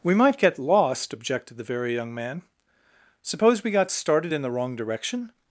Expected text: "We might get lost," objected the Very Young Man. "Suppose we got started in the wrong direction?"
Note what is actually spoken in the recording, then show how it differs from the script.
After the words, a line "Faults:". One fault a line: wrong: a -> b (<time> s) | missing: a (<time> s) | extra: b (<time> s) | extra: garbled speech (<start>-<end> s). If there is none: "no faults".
"We might get lost," objected the Very Young Man. "Suppose we got started in the wrong direction?"
Faults:
no faults